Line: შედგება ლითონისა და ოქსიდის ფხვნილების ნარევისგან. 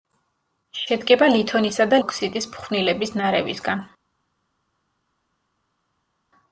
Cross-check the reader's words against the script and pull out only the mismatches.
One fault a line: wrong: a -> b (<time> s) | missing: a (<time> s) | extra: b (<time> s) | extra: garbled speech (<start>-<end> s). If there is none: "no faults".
no faults